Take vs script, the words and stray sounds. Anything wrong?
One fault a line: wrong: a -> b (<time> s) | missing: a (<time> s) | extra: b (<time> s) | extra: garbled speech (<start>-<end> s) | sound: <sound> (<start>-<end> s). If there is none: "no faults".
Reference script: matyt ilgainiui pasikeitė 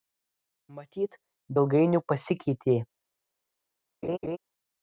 sound: laugh (4.0-4.4 s)